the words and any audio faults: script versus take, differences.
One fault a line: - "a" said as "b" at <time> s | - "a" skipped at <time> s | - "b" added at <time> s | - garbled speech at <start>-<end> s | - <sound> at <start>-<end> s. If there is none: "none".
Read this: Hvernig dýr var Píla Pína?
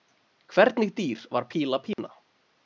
- dropout at 1.9-2.0 s